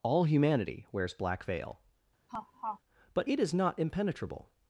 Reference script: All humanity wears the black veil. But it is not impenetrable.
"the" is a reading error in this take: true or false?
true